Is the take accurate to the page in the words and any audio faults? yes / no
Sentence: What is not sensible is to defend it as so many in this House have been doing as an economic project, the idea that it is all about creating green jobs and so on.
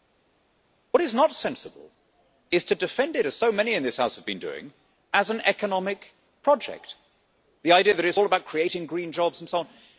yes